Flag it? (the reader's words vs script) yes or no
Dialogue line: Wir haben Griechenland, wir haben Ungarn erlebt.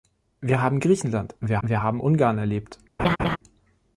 yes